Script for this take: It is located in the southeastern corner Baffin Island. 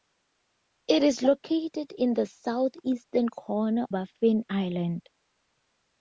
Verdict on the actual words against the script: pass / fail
pass